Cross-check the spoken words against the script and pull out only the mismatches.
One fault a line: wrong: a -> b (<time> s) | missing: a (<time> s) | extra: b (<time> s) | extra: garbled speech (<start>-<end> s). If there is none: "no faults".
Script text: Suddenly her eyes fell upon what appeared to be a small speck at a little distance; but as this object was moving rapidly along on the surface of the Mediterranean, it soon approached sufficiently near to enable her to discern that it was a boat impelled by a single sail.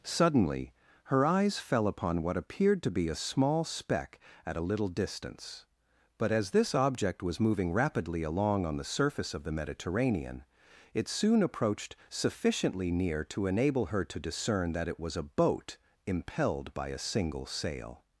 no faults